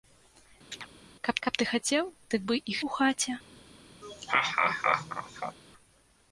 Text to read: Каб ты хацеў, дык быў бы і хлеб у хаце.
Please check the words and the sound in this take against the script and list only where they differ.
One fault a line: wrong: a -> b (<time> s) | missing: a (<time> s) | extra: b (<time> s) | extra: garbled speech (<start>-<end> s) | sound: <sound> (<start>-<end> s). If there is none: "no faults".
sound: chirp (0.7-0.9 s)
extra: каб (1.4 s)
missing: быў (2.4 s)
missing: хлеб (2.8 s)
sound: laugh (4.0-5.6 s)